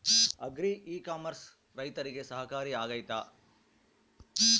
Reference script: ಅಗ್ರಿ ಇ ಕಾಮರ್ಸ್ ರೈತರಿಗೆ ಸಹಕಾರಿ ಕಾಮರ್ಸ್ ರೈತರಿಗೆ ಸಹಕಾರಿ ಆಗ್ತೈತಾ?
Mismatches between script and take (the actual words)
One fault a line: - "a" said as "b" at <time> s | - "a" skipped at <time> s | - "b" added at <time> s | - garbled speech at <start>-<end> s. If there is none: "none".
- "ಕಾಮರ್ಸ್ ರೈತರಿಗೆ ಸಹಕಾರಿ" skipped at 2.7 s